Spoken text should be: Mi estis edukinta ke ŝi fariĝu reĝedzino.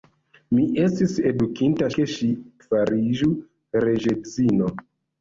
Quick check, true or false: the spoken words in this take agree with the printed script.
true